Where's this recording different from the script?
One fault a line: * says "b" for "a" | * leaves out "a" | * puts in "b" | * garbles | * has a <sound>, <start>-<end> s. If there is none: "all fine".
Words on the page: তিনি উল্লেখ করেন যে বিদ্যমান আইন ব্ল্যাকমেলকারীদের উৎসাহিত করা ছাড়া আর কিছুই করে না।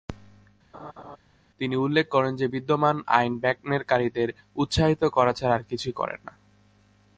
* has a laugh, 0.7-1.2 s